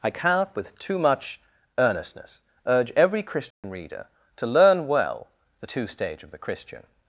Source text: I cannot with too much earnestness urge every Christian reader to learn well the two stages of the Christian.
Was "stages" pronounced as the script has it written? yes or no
no